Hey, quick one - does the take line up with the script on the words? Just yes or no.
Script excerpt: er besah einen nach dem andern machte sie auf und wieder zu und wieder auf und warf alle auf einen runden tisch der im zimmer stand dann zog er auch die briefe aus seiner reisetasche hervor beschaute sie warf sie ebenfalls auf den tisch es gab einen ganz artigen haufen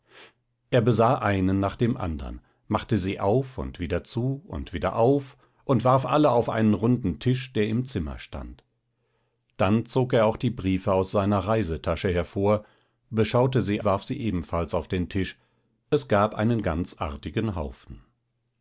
yes